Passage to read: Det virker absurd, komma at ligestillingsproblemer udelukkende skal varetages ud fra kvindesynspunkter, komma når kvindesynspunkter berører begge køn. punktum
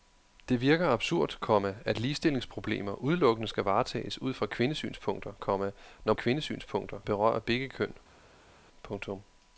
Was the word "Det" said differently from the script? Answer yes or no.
no